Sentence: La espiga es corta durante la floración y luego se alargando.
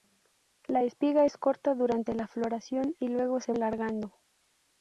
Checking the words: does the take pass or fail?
pass